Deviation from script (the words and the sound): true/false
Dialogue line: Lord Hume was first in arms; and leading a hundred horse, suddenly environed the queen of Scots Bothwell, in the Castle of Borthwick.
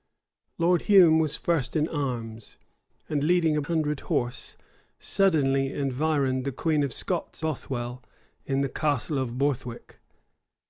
false